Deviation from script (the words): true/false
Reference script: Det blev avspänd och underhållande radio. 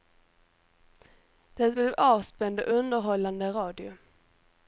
false